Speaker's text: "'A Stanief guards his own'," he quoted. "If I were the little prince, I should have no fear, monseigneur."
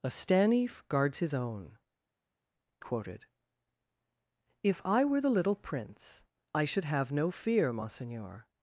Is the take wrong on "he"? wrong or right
wrong